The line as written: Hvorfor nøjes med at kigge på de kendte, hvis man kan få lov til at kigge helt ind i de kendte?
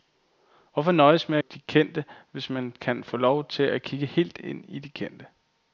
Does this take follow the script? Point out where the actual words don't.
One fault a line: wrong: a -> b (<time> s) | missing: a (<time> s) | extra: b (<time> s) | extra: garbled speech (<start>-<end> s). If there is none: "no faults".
missing: at kigge på (1.4 s)